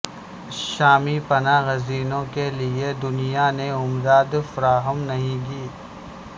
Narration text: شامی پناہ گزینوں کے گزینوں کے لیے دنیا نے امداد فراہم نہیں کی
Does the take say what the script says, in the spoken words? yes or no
no